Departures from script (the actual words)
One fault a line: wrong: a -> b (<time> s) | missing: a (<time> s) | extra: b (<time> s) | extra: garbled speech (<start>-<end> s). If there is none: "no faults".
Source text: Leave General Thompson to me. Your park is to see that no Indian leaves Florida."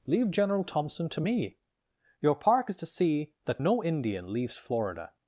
no faults